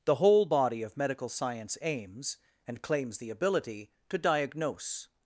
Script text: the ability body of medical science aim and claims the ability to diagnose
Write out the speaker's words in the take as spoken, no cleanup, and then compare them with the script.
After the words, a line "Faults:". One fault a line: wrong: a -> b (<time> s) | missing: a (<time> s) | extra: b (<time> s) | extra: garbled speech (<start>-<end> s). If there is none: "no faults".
the whole body of medical science aims and claims the ability to diagnose
Faults:
wrong: ability -> whole (0.1 s)
wrong: aim -> aims (1.8 s)